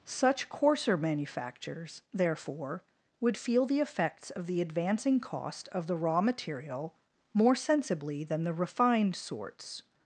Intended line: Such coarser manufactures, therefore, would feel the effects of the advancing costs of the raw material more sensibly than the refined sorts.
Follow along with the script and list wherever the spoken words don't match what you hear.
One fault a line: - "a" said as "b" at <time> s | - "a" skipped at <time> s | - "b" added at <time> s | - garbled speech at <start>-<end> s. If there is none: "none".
- "costs" said as "cost" at 5.2 s